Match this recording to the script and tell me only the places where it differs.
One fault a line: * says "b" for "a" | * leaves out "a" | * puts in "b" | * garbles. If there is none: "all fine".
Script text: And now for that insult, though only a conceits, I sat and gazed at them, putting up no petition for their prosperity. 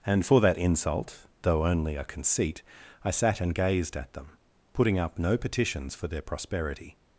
* leaves out "now"
* says "conceit" for "conceits"
* says "petitions" for "petition"